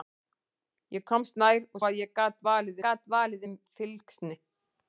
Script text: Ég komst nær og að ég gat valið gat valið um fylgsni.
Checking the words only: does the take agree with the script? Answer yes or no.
yes